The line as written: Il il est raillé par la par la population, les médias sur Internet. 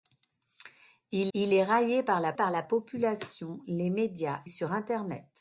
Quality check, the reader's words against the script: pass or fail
pass